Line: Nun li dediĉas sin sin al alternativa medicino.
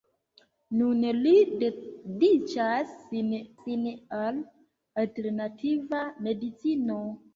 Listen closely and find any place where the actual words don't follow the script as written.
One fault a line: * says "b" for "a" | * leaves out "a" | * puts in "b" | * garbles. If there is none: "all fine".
all fine